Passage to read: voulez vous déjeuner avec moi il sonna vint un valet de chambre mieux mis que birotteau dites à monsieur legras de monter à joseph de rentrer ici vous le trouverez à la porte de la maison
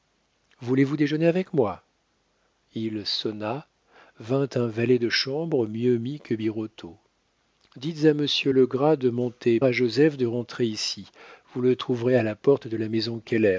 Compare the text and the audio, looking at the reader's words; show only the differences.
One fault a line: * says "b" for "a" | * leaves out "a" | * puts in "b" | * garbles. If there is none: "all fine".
all fine